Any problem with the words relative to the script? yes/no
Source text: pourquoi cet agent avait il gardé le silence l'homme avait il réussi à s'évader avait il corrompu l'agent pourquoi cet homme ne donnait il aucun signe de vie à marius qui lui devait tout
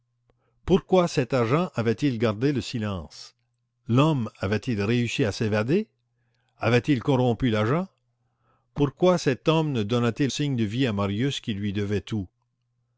yes